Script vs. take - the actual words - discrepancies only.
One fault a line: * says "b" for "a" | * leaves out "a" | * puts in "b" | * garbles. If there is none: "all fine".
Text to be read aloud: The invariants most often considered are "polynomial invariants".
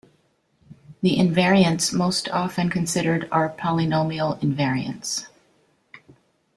all fine